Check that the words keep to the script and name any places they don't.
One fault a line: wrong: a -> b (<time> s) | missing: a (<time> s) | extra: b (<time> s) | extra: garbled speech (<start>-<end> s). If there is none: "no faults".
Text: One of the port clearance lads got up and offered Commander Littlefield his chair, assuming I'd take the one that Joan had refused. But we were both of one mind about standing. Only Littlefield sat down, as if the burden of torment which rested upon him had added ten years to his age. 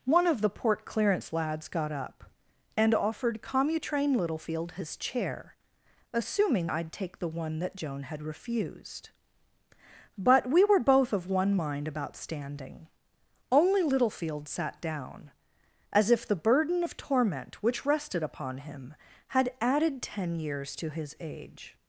wrong: Commander -> Commutrain (3.4 s)